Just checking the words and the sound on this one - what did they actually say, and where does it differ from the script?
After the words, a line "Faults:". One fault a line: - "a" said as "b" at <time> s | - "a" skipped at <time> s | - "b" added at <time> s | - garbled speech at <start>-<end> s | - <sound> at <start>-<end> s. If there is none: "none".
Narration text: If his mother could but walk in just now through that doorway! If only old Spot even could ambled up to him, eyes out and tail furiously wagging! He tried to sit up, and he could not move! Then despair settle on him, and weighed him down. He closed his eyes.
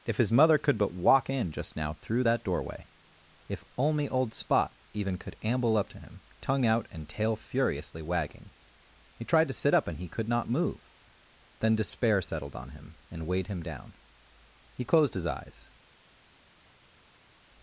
If his mother could but walk in just now through that doorway! If only old Spot even could amble up to him, tongue out and tail furiously wagging! He tried to sit up, and he could not move! Then despair settled on him, and weighed him down. He closed his eyes.
Faults:
- "ambled" said as "amble" at 5.4 s
- "eyes" said as "tongue" at 6.4 s
- "settle" said as "settled" at 12.2 s